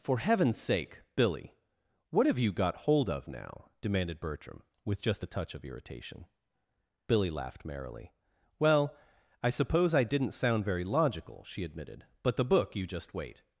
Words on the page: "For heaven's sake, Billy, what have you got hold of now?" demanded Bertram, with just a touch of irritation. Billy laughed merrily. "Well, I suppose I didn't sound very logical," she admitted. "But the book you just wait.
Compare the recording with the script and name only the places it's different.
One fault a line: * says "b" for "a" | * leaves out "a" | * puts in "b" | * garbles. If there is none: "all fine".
all fine